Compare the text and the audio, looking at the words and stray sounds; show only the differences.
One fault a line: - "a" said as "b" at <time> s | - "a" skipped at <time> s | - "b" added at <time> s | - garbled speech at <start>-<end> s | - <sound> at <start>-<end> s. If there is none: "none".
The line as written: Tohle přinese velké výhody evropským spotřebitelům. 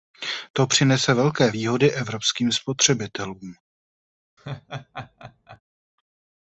- "Tohle" said as "To" at 0.5 s
- laugh at 4.4-5.6 s